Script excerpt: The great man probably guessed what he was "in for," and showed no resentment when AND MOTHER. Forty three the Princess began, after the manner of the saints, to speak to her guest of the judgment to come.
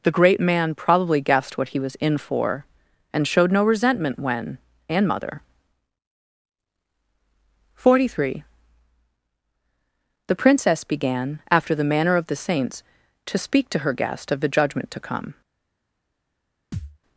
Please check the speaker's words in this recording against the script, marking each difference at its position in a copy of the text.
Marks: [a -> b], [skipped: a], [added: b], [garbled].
The great man probably guessed what he was "in for," and showed no resentment when AND MOTHER. Forty three the Princess began, after the manner of the saints, to speak to her guest of the judgment to come.